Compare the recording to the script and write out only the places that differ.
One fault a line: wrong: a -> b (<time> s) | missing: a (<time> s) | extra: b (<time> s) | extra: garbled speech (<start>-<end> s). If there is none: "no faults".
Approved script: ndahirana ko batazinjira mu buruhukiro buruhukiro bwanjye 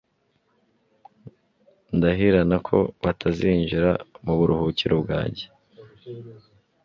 missing: buruhukiro (4.9 s)